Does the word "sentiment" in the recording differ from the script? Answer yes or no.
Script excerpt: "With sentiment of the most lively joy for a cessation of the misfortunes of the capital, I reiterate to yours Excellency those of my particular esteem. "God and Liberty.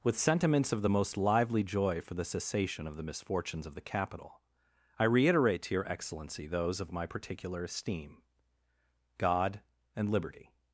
yes